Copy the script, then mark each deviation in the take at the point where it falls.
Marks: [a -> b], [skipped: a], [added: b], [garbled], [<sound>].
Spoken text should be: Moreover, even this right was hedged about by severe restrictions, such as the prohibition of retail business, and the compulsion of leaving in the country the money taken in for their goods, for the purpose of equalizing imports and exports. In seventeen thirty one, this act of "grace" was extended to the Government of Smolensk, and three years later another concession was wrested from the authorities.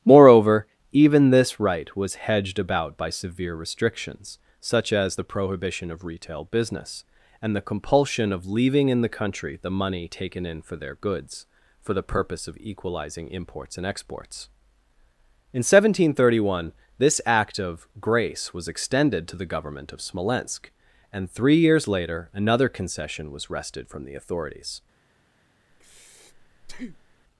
Moreover, even this right was hedged about by severe restrictions, such as the prohibition of retail business, and the compulsion of leaving in the country the money taken in for their goods, for the purpose of equalizing imports and exports. In seventeen thirty one, this act of "grace" was extended to the Government of Smolensk, and three years later another concession was wrested from the authorities. [breath]